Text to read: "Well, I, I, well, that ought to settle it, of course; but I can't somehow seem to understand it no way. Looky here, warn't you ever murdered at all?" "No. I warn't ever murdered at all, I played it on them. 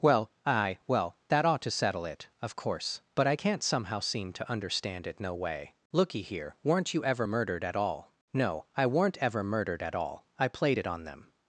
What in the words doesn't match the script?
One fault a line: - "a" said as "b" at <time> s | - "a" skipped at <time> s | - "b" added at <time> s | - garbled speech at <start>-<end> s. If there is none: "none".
- "I I" said as "aye" at 0.5 s
- "warn't" said as "weren't" at 6.6 s
- "warn't" said as "weren't" at 8.8 s